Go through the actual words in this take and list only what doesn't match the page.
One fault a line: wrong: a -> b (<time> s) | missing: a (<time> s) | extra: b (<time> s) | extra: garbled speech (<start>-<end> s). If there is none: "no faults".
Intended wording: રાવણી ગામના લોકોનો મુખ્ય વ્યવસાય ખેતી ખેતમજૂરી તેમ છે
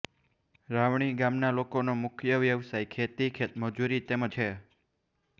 no faults